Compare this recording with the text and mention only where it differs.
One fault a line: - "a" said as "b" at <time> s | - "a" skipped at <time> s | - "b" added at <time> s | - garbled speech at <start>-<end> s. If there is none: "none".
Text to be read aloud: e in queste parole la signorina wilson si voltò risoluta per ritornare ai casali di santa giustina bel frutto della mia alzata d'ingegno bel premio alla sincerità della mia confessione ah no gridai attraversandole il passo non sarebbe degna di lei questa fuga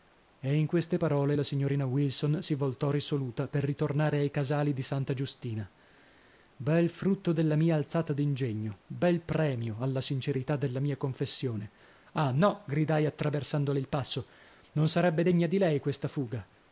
none